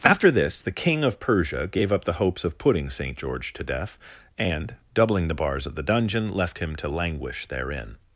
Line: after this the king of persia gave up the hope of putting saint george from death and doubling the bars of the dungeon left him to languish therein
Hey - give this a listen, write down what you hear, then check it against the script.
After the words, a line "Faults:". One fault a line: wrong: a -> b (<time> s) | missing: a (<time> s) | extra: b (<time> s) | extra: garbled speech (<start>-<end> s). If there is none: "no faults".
after this the king of persia gave up the hopes of putting saint george to death and doubling the bars of the dungeon left him to languish therein
Faults:
wrong: hope -> hopes (2.2 s)
wrong: from -> to (3.5 s)